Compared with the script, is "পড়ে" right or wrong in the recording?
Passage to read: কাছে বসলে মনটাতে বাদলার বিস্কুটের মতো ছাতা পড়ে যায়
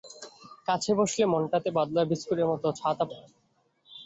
wrong